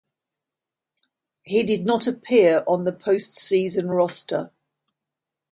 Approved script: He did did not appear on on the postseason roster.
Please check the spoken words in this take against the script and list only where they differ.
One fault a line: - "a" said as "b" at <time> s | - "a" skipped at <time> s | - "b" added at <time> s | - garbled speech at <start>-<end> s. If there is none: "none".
- "did" skipped at 1.9 s
- "on" skipped at 2.9 s